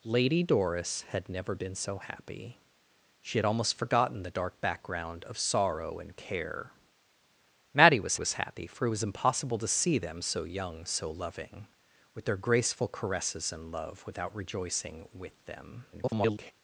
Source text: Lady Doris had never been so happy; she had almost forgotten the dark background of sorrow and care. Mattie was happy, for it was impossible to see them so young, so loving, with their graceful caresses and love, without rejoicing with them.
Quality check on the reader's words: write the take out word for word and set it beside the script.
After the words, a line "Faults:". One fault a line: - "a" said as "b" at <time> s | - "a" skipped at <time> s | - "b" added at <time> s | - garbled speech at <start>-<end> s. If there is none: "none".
Lady Doris had never been so happy; she had almost forgotten the dark background of sorrow and care. Mattie was was happy, for it was impossible to see them so young, so loving, with their graceful caresses and love, without rejoicing with them. [garbled]
Faults:
- "was" added at 8.1 s
- garbled speech at 15.9-16.5 s